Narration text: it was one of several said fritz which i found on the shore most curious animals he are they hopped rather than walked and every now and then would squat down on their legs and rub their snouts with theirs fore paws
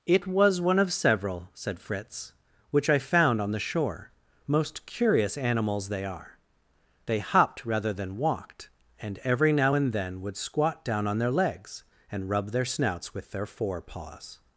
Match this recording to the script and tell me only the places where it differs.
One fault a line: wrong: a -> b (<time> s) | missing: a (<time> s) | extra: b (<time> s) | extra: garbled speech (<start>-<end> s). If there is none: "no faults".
wrong: he -> they (5.9 s)
wrong: theirs -> their (13.3 s)